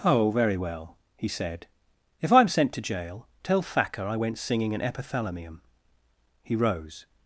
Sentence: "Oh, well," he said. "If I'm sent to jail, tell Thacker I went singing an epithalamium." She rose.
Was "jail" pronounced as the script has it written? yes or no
yes